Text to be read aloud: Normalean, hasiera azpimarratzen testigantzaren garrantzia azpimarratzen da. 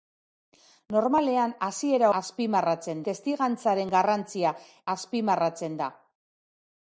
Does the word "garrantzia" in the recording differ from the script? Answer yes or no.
no